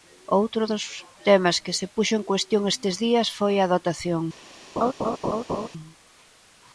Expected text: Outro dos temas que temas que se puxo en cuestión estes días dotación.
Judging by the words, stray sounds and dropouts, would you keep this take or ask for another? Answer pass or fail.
fail